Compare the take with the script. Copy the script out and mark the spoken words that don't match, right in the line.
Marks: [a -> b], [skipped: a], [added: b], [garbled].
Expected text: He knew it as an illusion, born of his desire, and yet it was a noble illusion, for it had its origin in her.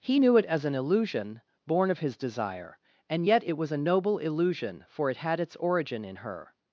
He knew it as an illusion, born of his desire, and yet it was a noble illusion, for it had its origin in her.